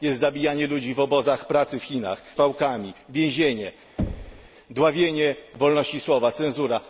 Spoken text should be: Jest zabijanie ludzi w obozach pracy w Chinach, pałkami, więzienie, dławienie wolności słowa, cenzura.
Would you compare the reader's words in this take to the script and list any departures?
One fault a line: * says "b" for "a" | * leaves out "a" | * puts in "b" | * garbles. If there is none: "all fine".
all fine